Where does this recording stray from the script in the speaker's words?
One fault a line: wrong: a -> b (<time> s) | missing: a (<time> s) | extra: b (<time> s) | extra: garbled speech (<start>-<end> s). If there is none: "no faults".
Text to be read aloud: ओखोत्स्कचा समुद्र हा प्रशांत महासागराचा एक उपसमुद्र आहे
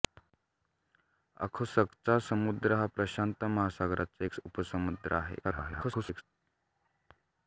extra: garbled speech (5.4-6.2 s)